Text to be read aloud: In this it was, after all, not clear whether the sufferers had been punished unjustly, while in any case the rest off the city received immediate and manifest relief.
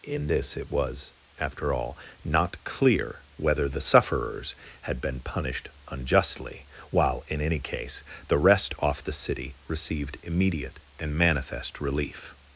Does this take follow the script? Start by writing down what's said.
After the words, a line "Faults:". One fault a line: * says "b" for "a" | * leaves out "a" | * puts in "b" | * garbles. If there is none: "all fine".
In this it was, after all, not clear whether the sufferers had been punished unjustly, while in any case the rest off the city received immediate and manifest relief.
Faults:
all fine